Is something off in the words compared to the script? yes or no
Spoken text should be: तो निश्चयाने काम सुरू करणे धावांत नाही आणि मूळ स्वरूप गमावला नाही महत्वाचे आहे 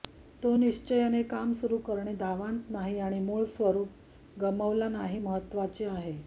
no